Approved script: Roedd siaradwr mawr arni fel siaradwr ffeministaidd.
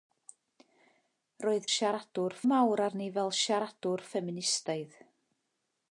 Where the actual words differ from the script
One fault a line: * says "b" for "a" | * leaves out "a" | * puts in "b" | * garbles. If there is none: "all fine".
all fine